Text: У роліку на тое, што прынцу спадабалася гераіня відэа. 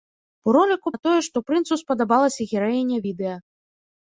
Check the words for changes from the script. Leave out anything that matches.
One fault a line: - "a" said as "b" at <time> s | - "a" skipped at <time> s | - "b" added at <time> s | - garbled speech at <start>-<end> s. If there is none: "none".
none